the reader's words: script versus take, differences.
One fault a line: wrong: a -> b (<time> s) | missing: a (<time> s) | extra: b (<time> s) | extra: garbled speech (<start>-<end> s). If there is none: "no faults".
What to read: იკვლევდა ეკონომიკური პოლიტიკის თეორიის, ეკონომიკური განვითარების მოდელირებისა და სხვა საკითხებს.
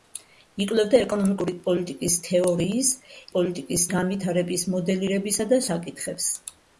wrong: ეკონომიკური -> პოლიტიკის (3.4 s)
missing: სხვა (5.6 s)